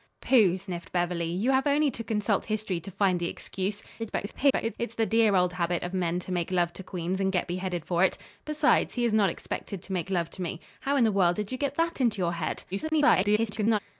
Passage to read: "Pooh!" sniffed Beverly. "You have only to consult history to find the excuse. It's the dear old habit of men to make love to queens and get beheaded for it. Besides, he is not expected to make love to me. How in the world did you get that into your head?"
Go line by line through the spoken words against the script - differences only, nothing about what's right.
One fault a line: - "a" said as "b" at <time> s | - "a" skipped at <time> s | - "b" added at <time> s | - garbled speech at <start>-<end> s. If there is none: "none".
- garbled speech at 4.0-4.8 s
- garbled speech at 12.7-13.8 s